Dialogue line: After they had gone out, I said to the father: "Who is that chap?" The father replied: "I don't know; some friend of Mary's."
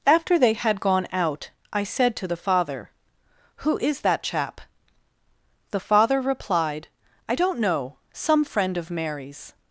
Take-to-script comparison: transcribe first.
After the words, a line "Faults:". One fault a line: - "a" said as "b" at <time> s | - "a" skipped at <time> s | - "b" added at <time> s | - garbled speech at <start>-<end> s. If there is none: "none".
After they had gone out, I said to the father: "Who is that chap?" The father replied: "I don't know; some friend of Mary's."
Faults:
none